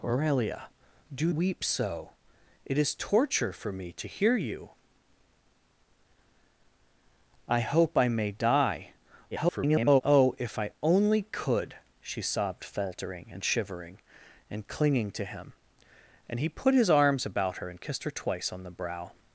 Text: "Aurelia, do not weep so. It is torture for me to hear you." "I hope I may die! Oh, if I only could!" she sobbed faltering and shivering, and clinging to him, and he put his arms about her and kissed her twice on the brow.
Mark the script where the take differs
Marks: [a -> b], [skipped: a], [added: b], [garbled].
"Aurelia, do [skipped: not] weep so. It is torture for me to hear you." "I hope I may die! [garbled] Oh, if I only could!" she sobbed faltering and shivering, and clinging to him, and he put his arms about her and kissed her twice on the brow.